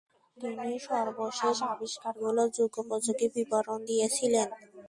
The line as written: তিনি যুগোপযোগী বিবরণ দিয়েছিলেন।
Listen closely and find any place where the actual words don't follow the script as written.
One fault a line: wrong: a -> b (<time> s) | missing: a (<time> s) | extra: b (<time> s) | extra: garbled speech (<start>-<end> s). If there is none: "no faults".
extra: সর্বশেষ আবিষ্কারগুলোর (0.9 s)